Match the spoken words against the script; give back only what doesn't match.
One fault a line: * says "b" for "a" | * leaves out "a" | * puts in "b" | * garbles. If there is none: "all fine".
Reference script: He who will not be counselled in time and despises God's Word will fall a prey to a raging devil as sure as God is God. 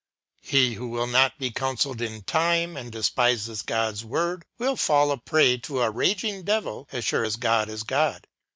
all fine